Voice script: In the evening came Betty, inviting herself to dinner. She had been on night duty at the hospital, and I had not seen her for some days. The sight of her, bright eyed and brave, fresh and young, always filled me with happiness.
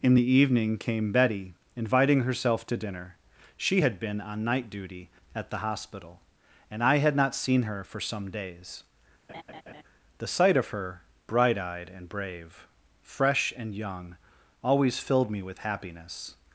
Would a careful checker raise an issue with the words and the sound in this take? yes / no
yes